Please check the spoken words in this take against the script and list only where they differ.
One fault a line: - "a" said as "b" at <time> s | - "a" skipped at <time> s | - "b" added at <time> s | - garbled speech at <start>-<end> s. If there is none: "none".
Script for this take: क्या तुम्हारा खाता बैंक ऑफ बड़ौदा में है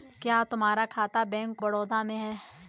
- "ऑफ" skipped at 1.6 s